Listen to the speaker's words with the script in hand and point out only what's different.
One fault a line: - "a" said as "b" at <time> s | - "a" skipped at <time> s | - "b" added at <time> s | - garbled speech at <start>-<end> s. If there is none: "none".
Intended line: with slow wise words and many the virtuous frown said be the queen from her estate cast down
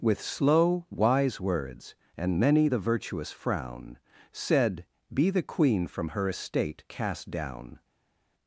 none